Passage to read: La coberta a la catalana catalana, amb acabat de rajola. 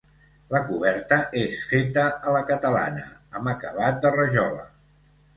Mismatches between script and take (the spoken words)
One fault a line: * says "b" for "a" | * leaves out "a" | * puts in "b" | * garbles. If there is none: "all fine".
* puts in "és feta"
* leaves out "catalana"